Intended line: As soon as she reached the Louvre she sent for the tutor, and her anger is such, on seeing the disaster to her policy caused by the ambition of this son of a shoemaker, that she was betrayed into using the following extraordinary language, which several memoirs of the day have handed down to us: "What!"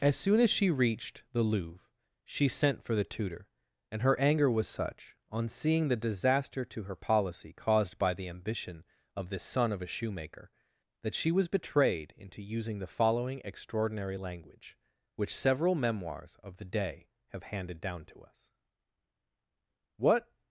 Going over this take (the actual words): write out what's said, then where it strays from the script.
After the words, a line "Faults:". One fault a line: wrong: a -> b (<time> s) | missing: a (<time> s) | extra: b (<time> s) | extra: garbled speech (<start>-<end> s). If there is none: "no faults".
As soon as she reached the Louvre she sent for the tutor, and her anger was such, on seeing the disaster to her policy caused by the ambition of this son of a shoemaker, that she was betrayed into using the following extraordinary language, which several memoirs of the day have handed down to us: "What!"
Faults:
wrong: is -> was (4.5 s)